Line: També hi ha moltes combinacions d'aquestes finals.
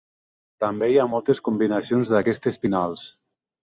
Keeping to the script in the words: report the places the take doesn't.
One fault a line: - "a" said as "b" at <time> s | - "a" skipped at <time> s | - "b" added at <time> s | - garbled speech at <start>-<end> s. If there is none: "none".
none